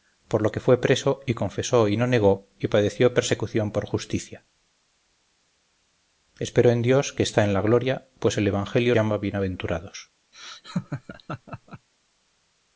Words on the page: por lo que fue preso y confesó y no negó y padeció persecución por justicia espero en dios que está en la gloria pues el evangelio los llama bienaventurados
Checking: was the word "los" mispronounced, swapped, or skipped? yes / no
yes